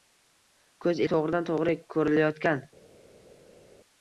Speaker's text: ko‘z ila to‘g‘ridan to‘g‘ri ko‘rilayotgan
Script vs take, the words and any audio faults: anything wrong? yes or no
yes